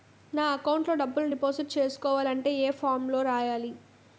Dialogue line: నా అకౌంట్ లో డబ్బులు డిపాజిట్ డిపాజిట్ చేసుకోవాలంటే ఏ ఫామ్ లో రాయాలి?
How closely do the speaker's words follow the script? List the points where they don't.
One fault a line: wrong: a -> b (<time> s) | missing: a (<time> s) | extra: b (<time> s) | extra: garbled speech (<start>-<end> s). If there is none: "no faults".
missing: డిపాజిట్ (1.8 s)